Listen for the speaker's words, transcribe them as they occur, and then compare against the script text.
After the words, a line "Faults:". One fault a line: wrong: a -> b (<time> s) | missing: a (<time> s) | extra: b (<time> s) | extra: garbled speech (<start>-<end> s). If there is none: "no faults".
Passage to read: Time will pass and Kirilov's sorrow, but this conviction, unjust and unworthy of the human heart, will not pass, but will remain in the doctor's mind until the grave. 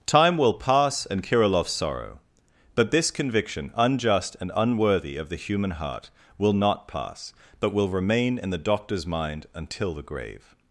Time will pass and Kirilov's sorrow, but this conviction, unjust and unworthy of the human heart, will not pass, but will remain in the doctor's mind until the grave.
Faults:
no faults